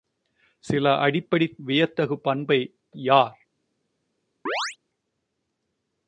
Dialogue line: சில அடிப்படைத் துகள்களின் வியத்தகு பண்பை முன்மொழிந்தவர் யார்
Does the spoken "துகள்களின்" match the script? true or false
false